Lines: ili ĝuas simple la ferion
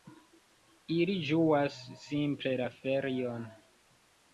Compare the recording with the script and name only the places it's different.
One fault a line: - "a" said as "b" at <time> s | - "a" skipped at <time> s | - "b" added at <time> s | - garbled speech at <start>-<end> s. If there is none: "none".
none